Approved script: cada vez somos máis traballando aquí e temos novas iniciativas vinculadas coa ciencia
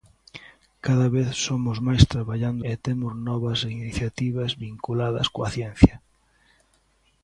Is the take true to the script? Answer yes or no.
no